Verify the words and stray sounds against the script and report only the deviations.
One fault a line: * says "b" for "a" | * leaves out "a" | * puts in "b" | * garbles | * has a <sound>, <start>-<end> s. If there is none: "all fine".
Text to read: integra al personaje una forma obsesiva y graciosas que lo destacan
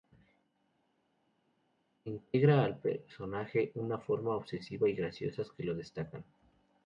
all fine